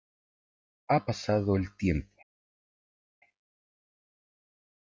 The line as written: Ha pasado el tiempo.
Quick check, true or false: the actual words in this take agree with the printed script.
true